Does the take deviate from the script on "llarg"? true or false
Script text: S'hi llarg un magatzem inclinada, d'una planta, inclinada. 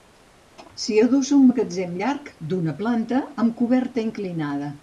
true